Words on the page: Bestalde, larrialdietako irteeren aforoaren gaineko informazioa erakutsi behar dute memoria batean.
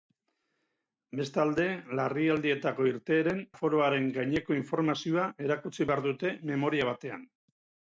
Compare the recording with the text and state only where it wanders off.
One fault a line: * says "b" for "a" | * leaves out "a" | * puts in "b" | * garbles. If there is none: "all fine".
all fine